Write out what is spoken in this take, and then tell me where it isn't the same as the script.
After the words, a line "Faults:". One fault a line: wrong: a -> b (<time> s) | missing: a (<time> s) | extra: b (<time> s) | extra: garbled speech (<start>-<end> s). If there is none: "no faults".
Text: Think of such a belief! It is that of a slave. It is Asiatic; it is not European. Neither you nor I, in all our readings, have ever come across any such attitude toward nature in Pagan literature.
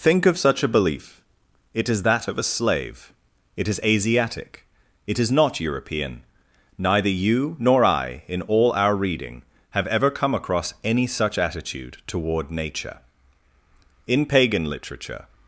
Think of such a belief! It is that of a slave. It is Asiatic; it is not European. Neither you nor I, in all our reading, have ever come across any such attitude toward nature in Pagan literature.
Faults:
wrong: readings -> reading (8.9 s)